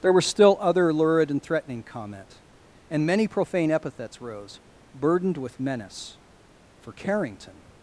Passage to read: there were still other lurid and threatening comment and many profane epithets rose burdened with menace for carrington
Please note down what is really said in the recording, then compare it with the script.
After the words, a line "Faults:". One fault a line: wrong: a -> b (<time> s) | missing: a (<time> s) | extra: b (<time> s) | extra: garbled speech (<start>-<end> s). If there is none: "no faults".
there were still other lurid and threatening comment and many profane epithets rose burdened with menace for carrington
Faults:
no faults